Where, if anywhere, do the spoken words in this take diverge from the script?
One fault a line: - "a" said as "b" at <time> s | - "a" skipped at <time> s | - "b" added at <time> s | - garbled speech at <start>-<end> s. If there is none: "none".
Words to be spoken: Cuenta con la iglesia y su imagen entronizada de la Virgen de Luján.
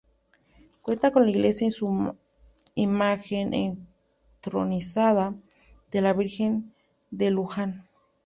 none